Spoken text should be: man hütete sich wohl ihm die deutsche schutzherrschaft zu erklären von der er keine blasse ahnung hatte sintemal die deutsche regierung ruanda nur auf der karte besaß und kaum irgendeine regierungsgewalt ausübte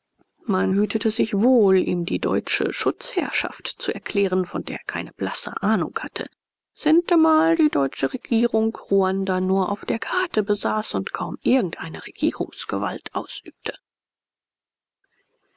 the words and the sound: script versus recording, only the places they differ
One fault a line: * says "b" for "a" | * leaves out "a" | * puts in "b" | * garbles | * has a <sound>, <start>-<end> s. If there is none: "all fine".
all fine